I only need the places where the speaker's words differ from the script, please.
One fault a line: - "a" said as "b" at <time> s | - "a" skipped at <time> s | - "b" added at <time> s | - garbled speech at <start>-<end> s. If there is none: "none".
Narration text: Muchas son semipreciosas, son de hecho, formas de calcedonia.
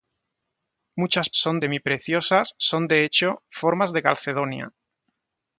none